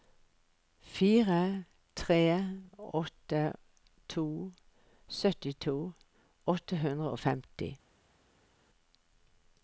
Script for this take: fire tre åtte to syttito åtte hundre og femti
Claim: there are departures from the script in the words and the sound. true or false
false